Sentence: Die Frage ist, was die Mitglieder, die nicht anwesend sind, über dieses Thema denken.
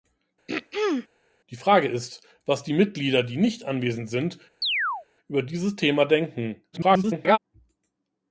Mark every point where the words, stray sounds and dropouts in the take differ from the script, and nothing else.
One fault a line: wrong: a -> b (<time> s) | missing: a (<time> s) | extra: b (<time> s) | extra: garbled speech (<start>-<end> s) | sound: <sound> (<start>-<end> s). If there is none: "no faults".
sound: throat clearing (0.5-1.1 s)
sound: chirp (4.6-5.1 s)
extra: garbled speech (6.7-7.4 s)